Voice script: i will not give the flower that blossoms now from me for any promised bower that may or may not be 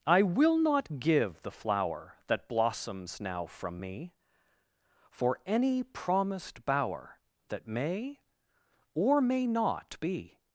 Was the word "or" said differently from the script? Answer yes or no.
no